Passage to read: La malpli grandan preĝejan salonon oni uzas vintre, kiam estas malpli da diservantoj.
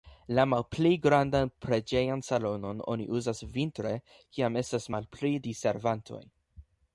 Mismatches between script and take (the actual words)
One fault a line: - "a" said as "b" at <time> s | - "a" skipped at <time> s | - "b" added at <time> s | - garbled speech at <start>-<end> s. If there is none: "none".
- "da" skipped at 5.3 s